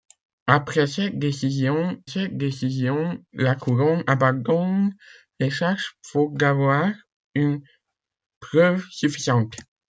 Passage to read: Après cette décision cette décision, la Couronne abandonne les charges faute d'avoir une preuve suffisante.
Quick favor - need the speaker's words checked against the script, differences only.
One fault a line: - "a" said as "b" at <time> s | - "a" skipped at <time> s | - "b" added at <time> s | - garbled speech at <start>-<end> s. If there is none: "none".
none